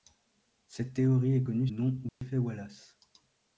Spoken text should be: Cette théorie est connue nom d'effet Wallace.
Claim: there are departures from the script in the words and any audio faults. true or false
true